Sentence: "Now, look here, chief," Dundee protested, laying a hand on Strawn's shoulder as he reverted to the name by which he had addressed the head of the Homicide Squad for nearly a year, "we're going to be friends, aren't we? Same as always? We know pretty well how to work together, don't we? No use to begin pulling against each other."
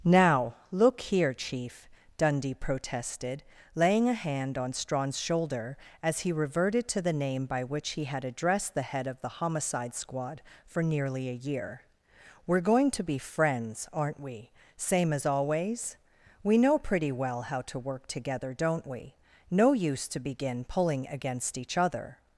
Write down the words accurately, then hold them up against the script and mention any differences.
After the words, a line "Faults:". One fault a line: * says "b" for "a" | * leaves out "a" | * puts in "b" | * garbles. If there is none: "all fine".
"Now, look here, chief," Dundee protested, laying a hand on Strawn's shoulder as he reverted to the name by which he had addressed the head of the Homicide Squad for nearly a year, "we're going to be friends, aren't we? Same as always? We know pretty well how to work together, don't we? No use to begin pulling against each other."
Faults:
all fine